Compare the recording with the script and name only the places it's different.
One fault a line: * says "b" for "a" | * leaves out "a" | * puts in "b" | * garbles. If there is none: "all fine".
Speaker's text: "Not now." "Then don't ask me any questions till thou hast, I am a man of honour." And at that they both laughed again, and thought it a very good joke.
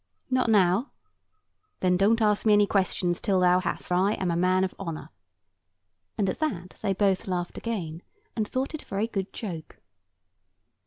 all fine